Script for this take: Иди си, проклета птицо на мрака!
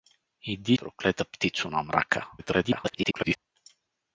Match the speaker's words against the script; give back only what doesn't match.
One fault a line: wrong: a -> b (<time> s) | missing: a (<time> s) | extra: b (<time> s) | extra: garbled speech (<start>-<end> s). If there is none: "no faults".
missing: си (0.8 s)
extra: garbled speech (2.4-3.4 s)